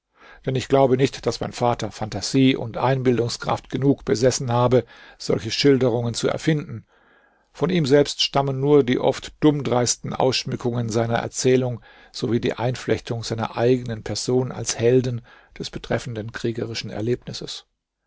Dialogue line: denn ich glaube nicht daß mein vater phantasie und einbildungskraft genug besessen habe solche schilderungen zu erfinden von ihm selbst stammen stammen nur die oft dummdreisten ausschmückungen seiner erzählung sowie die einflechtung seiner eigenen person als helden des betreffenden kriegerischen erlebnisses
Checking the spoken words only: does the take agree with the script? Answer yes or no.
no